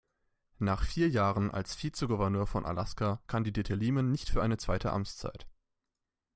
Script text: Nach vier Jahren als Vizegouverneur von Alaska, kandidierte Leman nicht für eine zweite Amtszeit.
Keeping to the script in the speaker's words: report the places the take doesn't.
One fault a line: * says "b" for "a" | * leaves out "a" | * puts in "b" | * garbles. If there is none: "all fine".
all fine